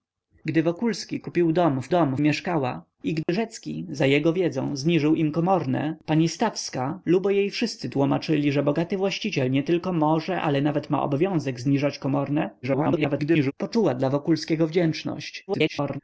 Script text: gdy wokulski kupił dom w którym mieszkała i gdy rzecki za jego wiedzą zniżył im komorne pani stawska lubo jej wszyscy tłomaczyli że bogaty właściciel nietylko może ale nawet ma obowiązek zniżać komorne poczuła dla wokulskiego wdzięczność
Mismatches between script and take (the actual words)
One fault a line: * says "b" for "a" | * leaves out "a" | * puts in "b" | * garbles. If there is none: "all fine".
* says "dom" for "którym"
* garbles
* garbles